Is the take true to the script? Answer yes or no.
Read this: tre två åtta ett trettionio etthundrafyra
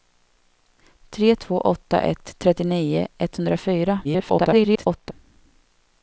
no